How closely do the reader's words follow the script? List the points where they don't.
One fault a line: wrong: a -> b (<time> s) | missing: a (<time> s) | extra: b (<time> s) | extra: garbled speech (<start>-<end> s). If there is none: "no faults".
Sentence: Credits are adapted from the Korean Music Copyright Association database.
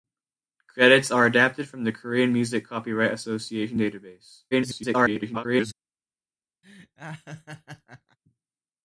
extra: garbled speech (4.5-5.7 s)